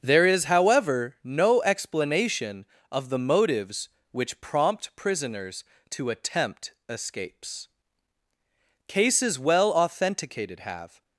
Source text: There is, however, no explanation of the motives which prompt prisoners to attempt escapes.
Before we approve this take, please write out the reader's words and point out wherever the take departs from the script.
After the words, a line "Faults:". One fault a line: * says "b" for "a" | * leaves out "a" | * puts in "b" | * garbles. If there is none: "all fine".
There is, however, no explanation of the motives which prompt prisoners to attempt escapes. Cases well authenticated have
Faults:
* puts in "Cases well authenticated have"